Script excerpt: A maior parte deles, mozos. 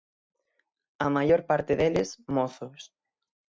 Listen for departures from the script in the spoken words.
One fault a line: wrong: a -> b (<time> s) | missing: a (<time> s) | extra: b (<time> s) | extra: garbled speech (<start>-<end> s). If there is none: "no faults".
no faults